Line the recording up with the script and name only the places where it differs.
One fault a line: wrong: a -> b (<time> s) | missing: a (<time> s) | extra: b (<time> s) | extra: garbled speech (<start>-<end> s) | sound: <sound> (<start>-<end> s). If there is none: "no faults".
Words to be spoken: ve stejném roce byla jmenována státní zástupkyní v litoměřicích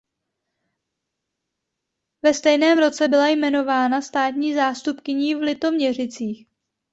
no faults